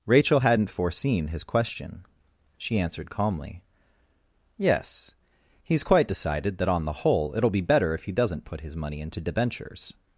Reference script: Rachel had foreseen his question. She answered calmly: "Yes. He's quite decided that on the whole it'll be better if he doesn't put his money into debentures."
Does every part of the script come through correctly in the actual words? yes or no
no